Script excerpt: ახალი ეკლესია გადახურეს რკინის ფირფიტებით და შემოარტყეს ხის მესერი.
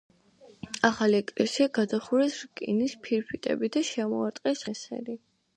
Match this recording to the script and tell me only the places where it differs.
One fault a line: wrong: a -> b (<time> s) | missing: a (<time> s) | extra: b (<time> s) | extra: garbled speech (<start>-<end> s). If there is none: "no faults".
missing: ხის (4.7 s)